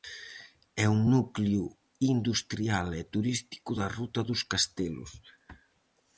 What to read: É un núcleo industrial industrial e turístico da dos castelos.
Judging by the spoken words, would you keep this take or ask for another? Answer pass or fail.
fail